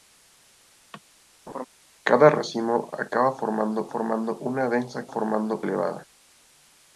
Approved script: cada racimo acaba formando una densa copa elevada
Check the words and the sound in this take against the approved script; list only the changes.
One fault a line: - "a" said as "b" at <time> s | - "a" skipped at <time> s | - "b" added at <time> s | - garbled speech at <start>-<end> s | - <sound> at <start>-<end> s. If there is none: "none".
- laugh at 1.5-1.7 s
- "formando" added at 3.9 s
- "copa" said as "formando" at 5.1 s